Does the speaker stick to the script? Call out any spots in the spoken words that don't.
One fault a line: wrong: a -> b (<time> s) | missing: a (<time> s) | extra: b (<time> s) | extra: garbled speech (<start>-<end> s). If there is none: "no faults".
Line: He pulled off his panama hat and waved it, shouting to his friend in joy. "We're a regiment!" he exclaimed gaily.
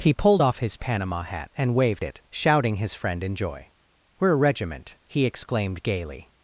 missing: to (2.8 s)